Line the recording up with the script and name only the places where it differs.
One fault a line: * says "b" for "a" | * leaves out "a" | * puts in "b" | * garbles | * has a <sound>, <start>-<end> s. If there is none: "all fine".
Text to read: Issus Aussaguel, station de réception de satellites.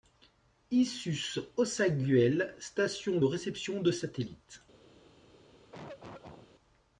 * has a cough, 5.7-6.5 s